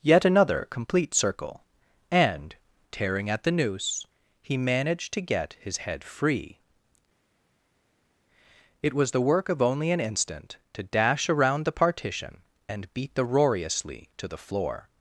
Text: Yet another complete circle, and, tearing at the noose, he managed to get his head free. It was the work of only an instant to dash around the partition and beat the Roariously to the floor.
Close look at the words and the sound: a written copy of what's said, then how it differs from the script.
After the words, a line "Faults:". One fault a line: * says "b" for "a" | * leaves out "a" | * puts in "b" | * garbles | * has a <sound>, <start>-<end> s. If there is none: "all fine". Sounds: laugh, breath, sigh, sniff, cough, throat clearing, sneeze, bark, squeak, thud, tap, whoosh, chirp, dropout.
Yet another complete circle, and, tearing at the noose, he managed to get his head free. It was the work of only an instant to dash around the partition and beat the Roariously to the floor.
Faults:
all fine